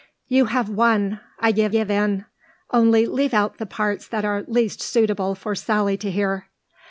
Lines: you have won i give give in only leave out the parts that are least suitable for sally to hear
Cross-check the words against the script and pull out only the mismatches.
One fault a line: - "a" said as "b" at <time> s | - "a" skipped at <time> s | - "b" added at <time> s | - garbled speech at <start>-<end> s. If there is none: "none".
none